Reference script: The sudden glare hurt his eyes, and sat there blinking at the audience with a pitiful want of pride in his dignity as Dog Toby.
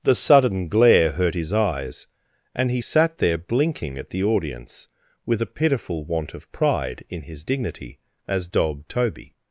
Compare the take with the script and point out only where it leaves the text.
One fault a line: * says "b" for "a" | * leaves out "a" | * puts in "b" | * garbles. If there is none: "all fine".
* puts in "he"